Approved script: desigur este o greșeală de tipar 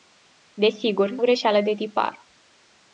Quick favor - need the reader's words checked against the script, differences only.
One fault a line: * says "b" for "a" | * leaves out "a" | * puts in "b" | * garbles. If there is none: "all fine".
* leaves out "este"